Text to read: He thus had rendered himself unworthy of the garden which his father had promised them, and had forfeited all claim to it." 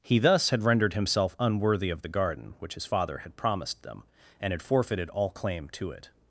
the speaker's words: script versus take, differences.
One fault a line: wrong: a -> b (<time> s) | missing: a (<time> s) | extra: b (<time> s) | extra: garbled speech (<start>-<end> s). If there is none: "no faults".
no faults